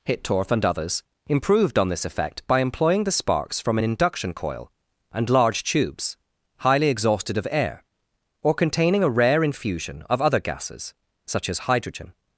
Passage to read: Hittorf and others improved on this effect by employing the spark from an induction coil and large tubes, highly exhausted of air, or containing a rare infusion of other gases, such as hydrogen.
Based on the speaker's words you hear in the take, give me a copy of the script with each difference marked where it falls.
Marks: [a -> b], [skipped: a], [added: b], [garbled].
Hittorf and others improved on this effect by employing the [spark -> sparks] from an induction coil and large tubes, highly exhausted of air, or containing a rare infusion of other gases, such as hydrogen.